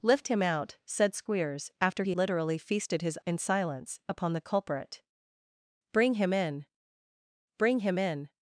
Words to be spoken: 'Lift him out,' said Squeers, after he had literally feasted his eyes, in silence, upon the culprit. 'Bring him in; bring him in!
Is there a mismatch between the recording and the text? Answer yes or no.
yes